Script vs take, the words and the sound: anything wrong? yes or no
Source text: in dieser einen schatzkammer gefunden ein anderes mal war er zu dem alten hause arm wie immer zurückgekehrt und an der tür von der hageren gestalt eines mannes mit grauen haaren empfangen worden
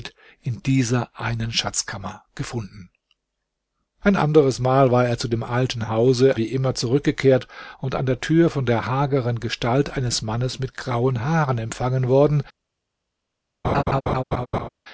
yes